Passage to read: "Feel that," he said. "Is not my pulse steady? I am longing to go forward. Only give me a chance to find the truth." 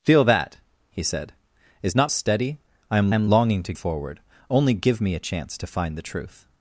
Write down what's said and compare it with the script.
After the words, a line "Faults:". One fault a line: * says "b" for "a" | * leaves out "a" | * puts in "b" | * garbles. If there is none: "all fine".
"Feel that," he said. "Is not steady? I am am longing to forward. Only give me a chance to find the truth."
Faults:
* leaves out "my pulse"
* puts in "am"
* leaves out "go"